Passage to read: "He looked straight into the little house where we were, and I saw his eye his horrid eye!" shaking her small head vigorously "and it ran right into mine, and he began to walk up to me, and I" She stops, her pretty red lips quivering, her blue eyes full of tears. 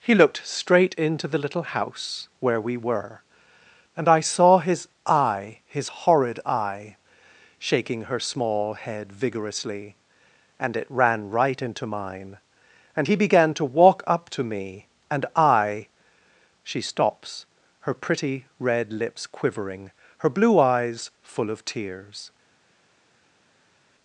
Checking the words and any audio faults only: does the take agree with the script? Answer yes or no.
yes